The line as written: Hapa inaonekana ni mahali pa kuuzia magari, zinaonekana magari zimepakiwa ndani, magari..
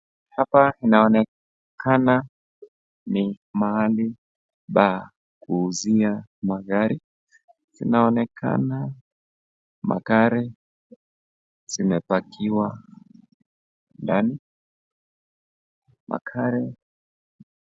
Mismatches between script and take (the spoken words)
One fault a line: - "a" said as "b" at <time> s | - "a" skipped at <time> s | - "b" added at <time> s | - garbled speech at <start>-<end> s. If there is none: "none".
none